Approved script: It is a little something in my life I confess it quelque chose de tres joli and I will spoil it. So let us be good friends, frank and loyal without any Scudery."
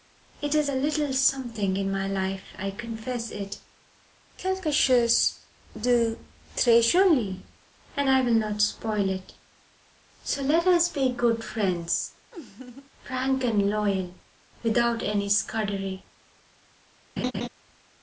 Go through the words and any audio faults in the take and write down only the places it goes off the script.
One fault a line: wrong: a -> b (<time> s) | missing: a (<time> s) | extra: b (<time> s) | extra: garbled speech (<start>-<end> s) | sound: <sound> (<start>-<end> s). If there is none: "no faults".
extra: not (8.3 s)
sound: laugh (12.3-12.9 s)
sound: laugh (17.2-17.5 s)